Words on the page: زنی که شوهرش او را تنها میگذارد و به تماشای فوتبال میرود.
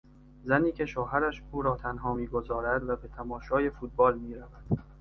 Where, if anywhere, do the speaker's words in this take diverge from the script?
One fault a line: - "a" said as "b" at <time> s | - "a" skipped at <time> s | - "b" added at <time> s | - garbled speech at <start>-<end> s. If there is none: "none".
none